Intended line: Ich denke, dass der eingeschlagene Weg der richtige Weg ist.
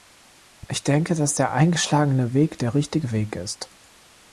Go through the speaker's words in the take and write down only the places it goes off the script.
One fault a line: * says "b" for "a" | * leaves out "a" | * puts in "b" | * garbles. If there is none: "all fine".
all fine